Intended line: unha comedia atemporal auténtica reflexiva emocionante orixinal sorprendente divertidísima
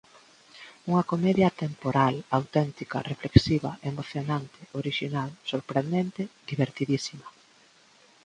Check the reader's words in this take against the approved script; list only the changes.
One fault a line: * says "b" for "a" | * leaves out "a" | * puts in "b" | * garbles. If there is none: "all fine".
all fine